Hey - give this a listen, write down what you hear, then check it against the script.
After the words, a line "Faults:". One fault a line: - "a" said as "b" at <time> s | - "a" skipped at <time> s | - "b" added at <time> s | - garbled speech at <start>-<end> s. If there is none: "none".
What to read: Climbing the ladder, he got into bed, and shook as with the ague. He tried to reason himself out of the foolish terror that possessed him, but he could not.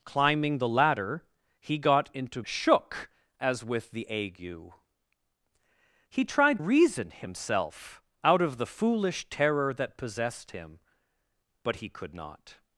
Climbing the ladder, he got into shook as with the ague. He tried reason himself out of the foolish terror that possessed him, but he could not.
Faults:
- "bed and" skipped at 2.4 s
- "to" skipped at 6.6 s